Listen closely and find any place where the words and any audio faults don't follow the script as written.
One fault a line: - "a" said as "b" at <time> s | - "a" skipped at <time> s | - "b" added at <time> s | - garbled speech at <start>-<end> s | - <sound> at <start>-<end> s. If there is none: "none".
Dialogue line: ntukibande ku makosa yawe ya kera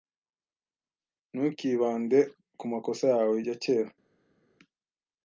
none